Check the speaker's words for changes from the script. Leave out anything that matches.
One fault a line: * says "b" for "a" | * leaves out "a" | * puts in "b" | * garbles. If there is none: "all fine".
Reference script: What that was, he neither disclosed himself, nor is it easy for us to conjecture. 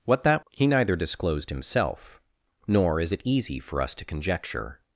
* leaves out "was"